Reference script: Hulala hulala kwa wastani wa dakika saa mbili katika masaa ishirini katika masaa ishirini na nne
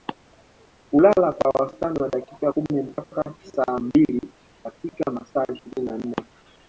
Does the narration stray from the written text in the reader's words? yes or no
yes